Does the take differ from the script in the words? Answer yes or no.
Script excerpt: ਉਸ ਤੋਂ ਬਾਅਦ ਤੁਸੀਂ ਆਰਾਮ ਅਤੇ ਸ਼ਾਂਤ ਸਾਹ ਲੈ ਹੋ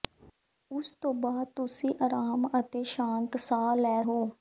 no